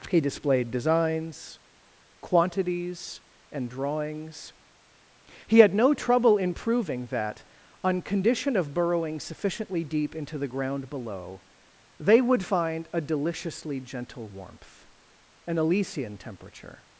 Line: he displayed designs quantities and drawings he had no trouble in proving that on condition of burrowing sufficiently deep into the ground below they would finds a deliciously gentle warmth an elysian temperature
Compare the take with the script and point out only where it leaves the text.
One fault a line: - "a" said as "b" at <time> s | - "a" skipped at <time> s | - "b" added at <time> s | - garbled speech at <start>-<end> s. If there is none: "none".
- "finds" said as "find" at 12.4 s